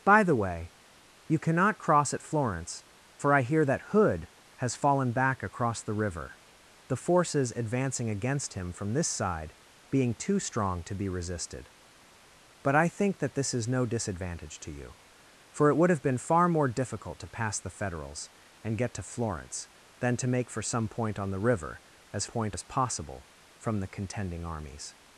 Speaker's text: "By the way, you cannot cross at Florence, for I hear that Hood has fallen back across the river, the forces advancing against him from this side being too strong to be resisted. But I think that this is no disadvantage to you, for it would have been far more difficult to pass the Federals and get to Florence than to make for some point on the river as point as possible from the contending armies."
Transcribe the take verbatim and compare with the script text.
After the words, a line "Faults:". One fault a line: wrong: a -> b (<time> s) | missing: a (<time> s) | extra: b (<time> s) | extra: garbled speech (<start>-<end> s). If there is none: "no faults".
"By the way, you cannot cross at Florence, for I hear that Hood has fallen back across the river, the forces advancing against him from this side being too strong to be resisted. But I think that this is no disadvantage to you, for it would have been far more difficult to pass the Federals and get to Florence than to make for some point on the river as point as possible from the contending armies."
Faults:
no faults